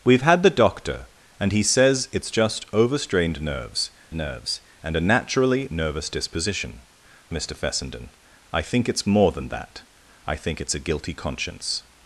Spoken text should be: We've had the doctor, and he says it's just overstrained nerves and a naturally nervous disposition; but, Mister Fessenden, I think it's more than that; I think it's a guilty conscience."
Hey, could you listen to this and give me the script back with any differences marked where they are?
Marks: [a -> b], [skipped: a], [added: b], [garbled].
We've had the doctor, and he says it's just overstrained nerves [added: nerves] and a naturally nervous disposition; [skipped: but,] Mister Fessenden, I think it's more than that; I think it's a guilty conscience."